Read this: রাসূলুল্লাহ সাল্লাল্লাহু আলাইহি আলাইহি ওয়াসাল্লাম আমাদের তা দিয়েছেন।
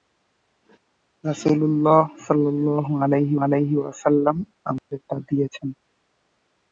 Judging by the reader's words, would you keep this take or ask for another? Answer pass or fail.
pass